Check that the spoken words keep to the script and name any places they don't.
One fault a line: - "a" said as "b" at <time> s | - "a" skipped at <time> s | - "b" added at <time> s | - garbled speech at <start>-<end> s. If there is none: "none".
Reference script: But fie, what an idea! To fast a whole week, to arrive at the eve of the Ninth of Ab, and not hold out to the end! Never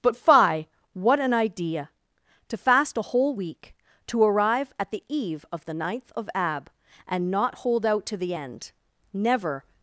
none